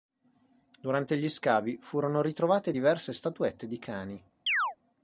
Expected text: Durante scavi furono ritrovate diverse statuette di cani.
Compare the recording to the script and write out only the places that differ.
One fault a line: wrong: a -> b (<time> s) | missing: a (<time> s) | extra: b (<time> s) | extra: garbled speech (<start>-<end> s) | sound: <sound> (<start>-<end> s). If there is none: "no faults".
extra: gli (1.1 s)
sound: chirp (4.5-4.8 s)